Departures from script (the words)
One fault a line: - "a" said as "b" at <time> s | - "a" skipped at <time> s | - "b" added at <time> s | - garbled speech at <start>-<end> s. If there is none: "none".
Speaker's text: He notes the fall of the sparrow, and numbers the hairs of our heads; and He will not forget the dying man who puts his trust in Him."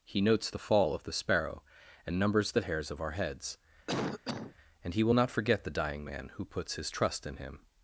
none